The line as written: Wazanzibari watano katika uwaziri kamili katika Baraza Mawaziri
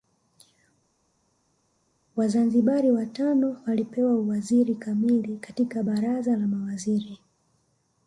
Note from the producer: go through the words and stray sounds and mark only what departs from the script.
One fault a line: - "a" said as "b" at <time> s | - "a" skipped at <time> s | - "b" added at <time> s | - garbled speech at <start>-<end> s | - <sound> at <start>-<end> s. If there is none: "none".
- "katika" said as "walipewa" at 3.7 s
- "la" added at 6.4 s